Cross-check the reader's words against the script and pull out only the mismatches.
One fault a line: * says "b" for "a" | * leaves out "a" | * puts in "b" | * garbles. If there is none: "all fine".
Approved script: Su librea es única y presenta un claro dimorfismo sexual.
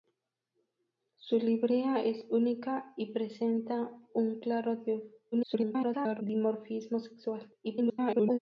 * garbles
* garbles